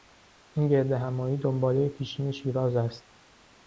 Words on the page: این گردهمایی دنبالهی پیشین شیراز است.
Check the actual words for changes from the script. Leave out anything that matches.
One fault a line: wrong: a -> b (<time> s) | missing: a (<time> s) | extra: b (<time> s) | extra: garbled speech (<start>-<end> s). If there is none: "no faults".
no faults